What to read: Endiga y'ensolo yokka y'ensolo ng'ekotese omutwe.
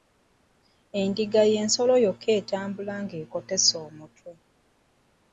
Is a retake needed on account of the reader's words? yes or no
yes